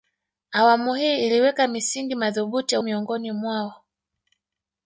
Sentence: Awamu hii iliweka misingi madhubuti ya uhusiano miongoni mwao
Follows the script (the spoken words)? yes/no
no